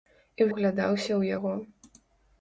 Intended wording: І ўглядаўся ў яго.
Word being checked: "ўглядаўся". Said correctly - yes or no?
yes